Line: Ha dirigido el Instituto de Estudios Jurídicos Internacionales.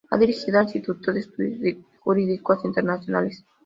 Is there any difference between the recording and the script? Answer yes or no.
no